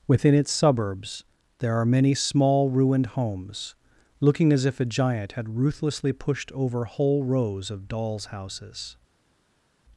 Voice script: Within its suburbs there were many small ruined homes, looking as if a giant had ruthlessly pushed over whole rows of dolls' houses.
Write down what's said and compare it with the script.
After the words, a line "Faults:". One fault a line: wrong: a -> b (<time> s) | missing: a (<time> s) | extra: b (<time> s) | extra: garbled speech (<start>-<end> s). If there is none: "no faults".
Within its suburbs there are many small ruined homes, looking as if a giant had ruthlessly pushed over whole rows of dolls' houses.
Faults:
wrong: were -> are (1.8 s)